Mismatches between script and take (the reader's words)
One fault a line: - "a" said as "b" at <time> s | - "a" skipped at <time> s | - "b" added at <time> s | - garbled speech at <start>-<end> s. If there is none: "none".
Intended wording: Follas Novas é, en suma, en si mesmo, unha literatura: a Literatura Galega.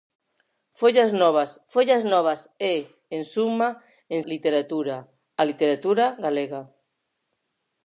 - "follas Novas" added at 1.7 s
- "si mesmo unha" skipped at 4.2 s